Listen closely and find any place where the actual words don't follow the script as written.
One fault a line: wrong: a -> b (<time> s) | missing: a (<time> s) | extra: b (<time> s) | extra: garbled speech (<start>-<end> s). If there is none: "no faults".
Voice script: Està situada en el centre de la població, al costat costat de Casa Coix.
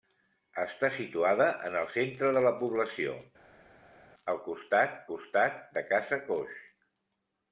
no faults